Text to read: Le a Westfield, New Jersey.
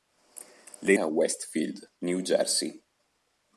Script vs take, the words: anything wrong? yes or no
no